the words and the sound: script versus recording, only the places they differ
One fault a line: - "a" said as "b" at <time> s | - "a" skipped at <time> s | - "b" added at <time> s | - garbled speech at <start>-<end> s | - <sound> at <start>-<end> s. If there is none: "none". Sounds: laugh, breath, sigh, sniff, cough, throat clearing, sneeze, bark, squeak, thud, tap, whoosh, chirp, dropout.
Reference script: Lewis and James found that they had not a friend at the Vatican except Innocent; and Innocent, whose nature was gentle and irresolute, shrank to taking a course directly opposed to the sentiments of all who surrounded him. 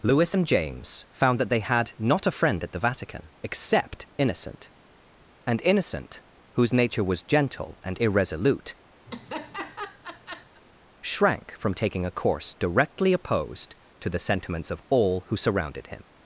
- laugh at 9.1-10.6 s
- "to" said as "from" at 11.6 s